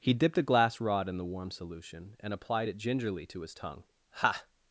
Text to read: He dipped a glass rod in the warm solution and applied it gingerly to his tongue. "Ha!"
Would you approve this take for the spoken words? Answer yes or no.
yes